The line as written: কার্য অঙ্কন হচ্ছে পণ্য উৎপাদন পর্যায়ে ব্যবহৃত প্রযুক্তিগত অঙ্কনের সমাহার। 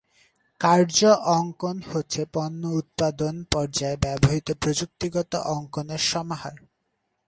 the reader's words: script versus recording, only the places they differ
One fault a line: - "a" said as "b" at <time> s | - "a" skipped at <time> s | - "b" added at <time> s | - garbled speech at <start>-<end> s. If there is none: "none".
none